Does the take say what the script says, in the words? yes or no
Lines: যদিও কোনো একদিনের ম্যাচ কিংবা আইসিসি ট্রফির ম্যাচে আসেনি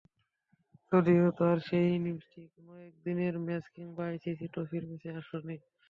no